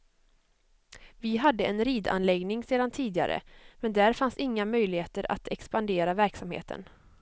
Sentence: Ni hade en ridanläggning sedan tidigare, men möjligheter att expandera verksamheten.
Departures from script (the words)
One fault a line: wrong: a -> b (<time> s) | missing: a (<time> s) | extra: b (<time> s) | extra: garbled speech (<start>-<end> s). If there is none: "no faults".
wrong: Ni -> Vi (1.2 s)
extra: där fanns inga (3.9 s)